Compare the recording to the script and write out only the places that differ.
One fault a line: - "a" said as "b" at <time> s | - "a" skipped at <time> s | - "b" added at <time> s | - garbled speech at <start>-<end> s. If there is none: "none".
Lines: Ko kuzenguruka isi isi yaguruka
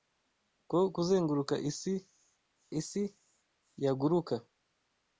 none